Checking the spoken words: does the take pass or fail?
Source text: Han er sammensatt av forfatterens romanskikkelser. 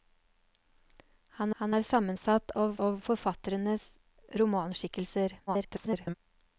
fail